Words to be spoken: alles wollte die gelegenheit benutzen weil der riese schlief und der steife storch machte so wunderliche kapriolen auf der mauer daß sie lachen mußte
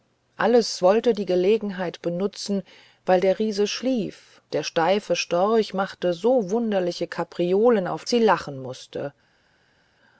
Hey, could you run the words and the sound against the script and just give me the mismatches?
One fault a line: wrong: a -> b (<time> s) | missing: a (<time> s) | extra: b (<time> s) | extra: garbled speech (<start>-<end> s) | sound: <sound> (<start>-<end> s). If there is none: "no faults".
missing: und (4.4 s)
missing: der mauer daß (8.0 s)